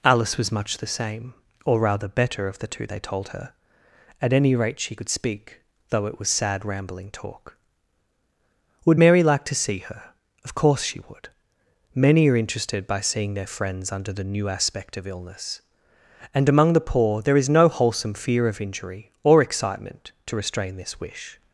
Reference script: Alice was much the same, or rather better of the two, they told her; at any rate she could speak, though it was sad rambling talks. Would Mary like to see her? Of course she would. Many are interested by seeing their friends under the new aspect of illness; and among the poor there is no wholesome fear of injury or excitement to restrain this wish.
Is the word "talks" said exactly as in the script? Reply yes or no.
no